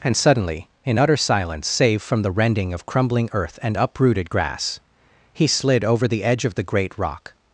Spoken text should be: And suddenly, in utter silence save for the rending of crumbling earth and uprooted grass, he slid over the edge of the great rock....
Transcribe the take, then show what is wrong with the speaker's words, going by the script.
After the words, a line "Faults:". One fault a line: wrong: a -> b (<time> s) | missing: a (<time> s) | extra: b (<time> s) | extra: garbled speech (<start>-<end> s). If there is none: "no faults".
And suddenly, in utter silence save from the rending of crumbling earth and uprooted grass, he slid over the edge of the great rock....
Faults:
wrong: for -> from (2.0 s)